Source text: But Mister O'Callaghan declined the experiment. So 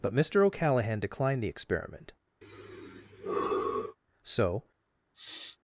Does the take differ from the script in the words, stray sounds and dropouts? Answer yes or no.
yes